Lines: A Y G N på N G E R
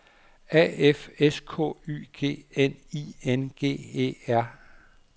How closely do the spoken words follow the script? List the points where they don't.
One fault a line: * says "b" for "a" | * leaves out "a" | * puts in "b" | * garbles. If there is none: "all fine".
* puts in "F S K"
* says "I" for "på"